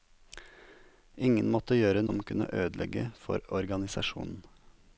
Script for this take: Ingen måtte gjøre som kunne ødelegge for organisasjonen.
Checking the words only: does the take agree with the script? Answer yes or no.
yes